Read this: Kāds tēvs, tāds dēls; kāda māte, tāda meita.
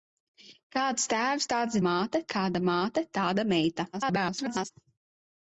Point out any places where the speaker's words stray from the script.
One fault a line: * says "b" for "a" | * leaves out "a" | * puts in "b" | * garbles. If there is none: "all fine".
* says "māte" for "dēls"
* garbles